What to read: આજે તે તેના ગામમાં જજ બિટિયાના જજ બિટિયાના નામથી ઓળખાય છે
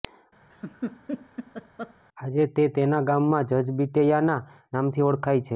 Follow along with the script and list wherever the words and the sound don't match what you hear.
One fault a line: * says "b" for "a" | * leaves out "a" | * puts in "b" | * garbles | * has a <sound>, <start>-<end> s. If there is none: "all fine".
* has a laugh, 0.5-1.9 s
* leaves out "જજ બિટિયાના"